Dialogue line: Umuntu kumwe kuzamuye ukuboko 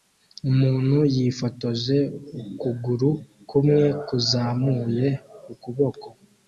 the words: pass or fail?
fail